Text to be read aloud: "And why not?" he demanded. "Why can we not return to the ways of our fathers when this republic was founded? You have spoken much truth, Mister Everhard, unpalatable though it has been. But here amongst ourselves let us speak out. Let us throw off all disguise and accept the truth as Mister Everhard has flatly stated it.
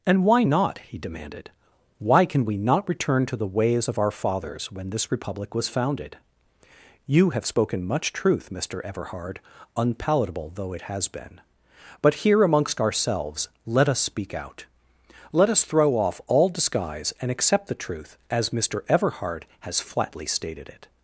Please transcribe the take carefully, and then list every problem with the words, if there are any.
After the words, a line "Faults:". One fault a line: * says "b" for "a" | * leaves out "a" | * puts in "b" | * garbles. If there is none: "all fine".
"And why not?" he demanded. "Why can we not return to the ways of our fathers when this republic was founded? You have spoken much truth, Mister Everhard, unpalatable though it has been. But here amongst ourselves let us speak out. Let us throw off all disguise and accept the truth as Mister Everhard has flatly stated it.
Faults:
all fine